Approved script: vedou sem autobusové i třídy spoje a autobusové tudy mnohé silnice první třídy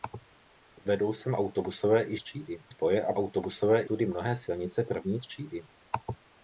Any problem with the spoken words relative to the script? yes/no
no